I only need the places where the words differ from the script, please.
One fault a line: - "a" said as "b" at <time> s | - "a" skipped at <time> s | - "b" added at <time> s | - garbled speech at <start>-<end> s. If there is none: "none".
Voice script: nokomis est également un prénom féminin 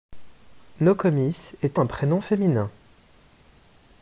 - "également" skipped at 1.8 s